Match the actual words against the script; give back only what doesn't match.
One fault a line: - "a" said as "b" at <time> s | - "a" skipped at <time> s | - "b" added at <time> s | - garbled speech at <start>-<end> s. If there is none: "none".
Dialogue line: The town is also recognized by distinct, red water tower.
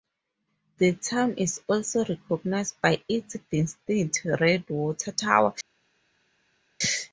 - "its" added at 3.1 s